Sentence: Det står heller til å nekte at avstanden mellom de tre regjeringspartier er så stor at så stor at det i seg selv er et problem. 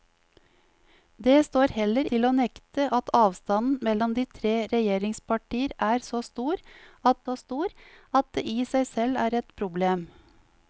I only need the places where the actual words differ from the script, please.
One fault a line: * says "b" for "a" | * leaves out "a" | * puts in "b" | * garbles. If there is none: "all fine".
all fine